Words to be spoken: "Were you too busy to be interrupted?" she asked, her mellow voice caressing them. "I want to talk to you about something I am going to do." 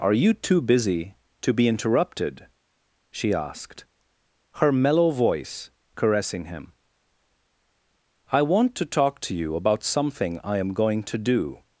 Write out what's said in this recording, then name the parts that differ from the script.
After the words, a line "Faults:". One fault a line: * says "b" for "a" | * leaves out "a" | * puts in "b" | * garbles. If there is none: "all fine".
"Are you too busy to be interrupted?" she asked, her mellow voice caressing him. "I want to talk to you about something I am going to do."
Faults:
* says "Are" for "Were"
* says "him" for "them"